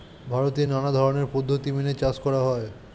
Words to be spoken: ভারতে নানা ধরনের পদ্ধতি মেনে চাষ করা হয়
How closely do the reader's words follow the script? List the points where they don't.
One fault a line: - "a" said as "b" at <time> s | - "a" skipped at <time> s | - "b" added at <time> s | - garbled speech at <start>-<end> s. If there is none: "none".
none